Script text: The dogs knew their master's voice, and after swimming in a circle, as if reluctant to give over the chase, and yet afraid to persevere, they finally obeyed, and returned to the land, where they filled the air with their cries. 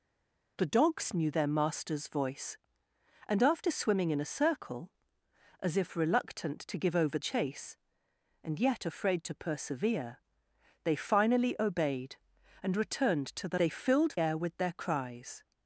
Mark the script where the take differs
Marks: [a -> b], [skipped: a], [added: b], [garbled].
The dogs knew their master's voice, and after swimming in a circle, as if reluctant to give over [skipped: the] chase, and yet afraid to persevere, they finally obeyed, and returned to the [skipped: land, where] they filled [skipped: the] air with their cries.